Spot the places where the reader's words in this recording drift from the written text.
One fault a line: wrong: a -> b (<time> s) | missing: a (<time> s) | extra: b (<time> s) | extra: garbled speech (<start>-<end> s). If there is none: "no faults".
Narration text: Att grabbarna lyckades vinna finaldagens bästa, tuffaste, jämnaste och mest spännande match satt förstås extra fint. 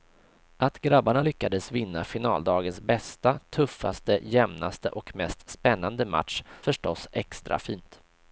missing: satt (6.4 s)